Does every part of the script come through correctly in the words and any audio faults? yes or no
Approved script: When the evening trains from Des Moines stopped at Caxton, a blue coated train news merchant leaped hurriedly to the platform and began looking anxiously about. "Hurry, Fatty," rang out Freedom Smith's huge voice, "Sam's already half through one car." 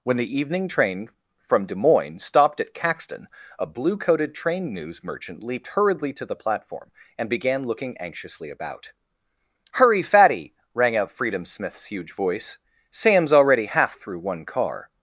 no